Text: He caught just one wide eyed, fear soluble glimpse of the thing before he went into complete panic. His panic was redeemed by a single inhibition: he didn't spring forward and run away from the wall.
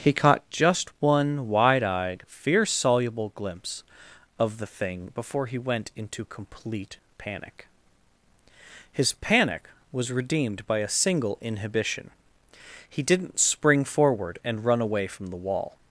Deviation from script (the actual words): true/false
false